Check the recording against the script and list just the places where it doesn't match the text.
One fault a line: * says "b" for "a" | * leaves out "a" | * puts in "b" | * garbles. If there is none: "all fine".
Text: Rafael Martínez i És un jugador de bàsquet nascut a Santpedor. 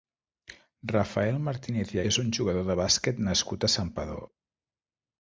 all fine